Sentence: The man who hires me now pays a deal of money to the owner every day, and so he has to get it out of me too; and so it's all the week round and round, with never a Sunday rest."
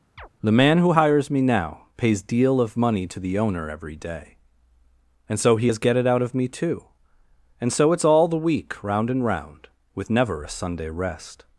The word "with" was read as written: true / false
true